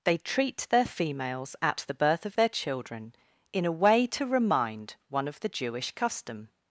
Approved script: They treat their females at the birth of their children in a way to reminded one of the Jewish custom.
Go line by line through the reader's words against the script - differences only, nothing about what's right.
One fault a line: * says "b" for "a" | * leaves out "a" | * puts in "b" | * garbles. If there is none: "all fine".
* says "remind" for "reminded"